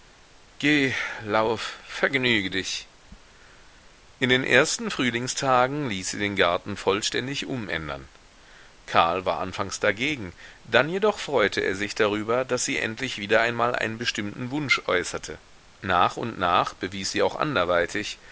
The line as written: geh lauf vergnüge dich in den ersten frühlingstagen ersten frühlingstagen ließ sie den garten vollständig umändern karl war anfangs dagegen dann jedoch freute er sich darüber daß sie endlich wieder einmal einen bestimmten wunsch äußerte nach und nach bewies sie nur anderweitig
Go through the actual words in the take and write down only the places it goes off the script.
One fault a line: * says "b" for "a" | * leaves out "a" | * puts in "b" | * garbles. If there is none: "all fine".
* leaves out "ersten frühlingstagen"
* says "auch" for "nur"